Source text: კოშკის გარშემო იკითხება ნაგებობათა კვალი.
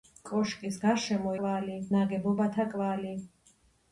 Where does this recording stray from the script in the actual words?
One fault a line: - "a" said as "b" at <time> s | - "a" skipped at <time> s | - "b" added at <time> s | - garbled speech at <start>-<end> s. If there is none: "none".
- "იკითხება" said as "კვალი" at 1.4 s